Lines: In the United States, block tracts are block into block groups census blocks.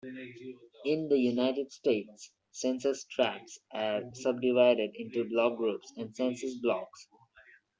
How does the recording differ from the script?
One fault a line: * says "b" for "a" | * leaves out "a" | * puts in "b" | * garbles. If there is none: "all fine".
* says "census" for "block"
* says "subdivided" for "block"
* puts in "and"